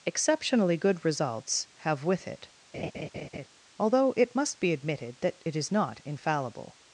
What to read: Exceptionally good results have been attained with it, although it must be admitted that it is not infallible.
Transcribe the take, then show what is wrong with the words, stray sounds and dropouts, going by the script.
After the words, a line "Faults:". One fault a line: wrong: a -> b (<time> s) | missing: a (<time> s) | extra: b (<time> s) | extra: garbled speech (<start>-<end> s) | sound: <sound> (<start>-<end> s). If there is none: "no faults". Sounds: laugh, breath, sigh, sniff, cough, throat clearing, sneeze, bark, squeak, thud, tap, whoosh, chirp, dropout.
Exceptionally good results have with it, although it must be admitted that it is not infallible.
Faults:
missing: been attained (2.0 s)
sound: laugh (2.7-3.5 s)